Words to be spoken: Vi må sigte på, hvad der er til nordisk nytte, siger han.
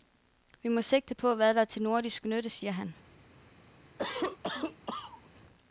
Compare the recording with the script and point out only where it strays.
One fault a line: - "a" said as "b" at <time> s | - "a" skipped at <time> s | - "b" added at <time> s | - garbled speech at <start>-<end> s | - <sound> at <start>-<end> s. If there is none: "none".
- cough at 4.0-5.3 s